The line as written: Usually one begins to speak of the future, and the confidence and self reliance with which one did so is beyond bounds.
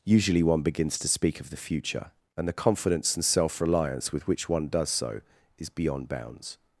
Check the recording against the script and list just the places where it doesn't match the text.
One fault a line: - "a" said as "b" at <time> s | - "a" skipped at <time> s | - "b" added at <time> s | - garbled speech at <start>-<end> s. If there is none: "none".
- "did" said as "does" at 4.7 s